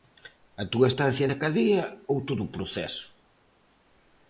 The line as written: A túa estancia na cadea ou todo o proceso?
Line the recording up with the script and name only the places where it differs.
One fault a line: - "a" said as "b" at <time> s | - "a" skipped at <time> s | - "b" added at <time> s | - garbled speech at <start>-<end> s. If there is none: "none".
none